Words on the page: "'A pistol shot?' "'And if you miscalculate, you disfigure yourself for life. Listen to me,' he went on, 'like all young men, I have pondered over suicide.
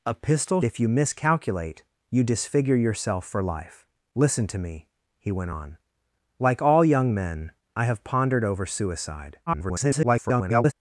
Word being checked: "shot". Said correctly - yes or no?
no